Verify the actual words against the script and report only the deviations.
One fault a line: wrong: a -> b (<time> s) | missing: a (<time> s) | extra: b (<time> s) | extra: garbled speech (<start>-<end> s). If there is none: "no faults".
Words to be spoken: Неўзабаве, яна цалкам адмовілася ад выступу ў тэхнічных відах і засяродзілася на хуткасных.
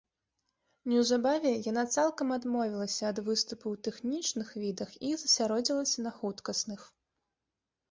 no faults